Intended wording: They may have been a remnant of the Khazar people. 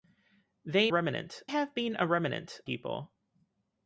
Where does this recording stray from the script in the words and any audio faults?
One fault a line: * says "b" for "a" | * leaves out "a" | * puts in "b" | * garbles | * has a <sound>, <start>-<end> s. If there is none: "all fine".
* says "remnant" for "may"
* leaves out "of the Khazar"